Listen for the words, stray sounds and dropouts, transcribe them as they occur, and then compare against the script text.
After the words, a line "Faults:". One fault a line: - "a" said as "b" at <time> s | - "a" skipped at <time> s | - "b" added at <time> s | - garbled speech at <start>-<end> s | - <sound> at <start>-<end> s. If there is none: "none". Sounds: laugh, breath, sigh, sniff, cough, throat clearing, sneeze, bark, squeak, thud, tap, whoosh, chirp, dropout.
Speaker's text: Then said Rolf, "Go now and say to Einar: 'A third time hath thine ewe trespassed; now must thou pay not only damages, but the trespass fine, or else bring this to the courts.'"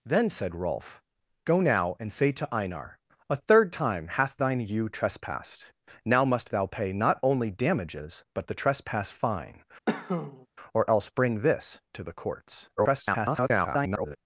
Then said Rolf, "Go now and say to Einar: 'A third time hath thine ewe trespassed; now must thou pay not only damages, but the trespass fine, or else bring this to the courts.'" [garbled]
Faults:
- cough at 9.9-10.5 s
- garbled speech at 12.8-14.2 s